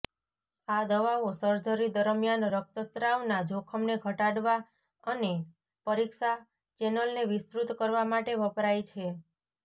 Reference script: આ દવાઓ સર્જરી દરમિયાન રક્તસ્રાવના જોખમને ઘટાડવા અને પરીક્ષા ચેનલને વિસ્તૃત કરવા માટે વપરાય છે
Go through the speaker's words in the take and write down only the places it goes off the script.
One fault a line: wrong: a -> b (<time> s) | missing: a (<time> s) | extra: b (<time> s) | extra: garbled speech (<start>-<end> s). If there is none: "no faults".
no faults